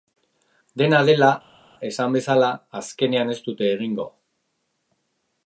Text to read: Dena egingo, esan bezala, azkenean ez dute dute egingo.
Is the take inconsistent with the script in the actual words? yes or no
yes